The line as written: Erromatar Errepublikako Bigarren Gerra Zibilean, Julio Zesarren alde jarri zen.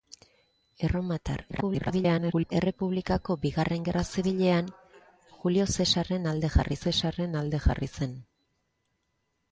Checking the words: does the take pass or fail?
fail